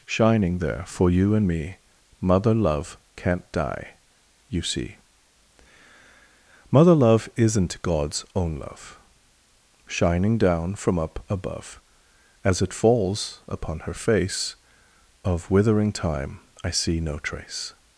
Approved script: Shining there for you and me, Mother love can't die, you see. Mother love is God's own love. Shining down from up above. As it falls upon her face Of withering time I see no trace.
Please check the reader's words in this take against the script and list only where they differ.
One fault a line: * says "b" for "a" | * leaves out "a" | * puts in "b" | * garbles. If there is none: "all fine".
* says "isn't" for "is"